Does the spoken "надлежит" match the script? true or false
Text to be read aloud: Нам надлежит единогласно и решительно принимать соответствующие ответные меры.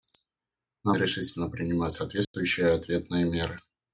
false